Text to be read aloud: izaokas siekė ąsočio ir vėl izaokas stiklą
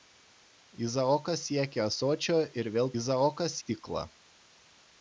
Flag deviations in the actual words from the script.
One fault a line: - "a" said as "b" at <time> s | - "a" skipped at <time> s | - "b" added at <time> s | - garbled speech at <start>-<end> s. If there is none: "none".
none